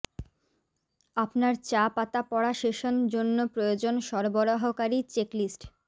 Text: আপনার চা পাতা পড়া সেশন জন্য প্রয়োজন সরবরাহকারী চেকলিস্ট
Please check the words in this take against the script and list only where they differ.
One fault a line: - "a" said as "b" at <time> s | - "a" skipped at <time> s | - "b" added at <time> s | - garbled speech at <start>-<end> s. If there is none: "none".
none